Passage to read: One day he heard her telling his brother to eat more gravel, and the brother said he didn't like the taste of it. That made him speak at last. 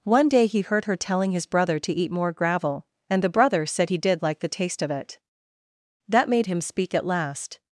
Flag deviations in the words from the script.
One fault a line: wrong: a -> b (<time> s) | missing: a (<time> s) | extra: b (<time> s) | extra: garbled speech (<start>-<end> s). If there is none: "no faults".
wrong: didn't -> did (4.0 s)